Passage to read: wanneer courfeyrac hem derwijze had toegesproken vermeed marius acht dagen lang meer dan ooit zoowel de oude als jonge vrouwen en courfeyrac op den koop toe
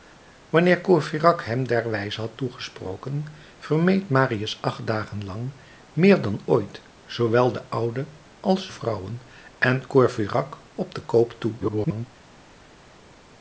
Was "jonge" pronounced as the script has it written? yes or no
no